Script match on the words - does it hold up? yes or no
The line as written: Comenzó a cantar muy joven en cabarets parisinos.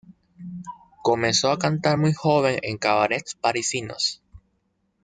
yes